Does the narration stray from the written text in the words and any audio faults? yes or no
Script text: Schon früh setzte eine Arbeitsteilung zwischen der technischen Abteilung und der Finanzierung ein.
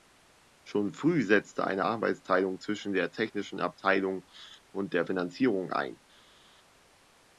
no